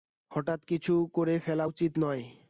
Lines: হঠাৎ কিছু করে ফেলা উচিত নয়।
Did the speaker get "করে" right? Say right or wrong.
right